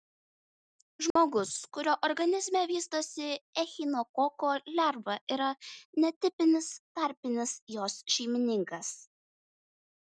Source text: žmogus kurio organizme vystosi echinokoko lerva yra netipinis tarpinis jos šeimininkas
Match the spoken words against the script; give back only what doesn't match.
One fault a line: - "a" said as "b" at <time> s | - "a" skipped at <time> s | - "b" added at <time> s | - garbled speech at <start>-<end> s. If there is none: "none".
none